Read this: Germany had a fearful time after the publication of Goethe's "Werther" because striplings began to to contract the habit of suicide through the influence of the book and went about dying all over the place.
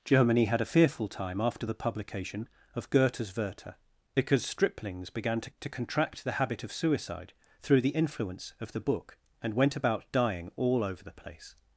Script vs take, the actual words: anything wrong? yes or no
no